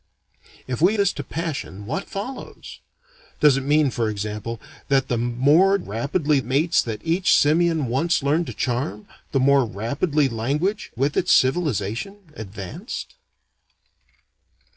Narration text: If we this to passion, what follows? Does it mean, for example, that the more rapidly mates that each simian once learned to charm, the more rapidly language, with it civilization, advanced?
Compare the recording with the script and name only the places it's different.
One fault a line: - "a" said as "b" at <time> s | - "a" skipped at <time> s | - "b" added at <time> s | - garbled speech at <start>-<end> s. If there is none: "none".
none